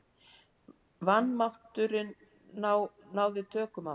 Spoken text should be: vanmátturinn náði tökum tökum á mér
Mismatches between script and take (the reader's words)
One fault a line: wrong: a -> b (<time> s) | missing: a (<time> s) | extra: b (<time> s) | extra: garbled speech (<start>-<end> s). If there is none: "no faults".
missing: tökum (3.9 s)